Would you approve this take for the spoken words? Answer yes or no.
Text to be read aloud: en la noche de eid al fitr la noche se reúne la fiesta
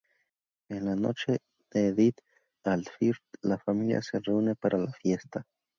no